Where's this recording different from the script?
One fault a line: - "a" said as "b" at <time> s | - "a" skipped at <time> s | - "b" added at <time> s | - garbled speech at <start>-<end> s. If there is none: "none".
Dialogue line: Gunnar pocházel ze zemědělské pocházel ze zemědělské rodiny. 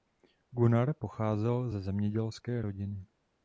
- "pocházel ze zemědělské" skipped at 2.6 s